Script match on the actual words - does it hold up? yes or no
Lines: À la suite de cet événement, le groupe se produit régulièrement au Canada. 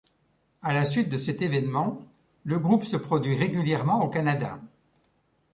yes